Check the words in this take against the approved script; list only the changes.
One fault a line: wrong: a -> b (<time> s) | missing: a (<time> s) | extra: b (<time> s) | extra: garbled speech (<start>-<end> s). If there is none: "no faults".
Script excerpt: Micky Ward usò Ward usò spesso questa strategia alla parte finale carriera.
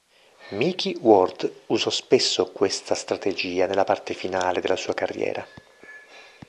missing: Ward usò (1.9 s)
wrong: alla -> nella (3.7 s)
extra: della sua (4.6 s)